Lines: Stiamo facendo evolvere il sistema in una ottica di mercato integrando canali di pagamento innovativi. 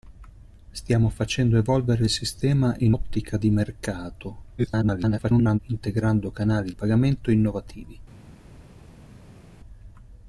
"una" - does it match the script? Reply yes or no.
no